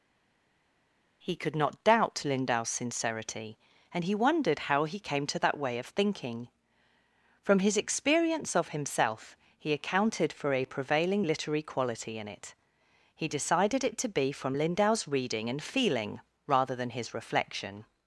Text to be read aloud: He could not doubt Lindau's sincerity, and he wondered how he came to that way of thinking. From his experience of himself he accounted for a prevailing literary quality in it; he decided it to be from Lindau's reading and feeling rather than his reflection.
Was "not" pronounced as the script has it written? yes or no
yes